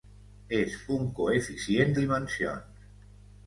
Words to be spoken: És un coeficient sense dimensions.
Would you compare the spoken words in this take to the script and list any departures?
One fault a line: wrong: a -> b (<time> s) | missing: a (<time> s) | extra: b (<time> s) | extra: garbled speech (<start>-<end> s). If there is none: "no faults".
missing: sense (1.9 s)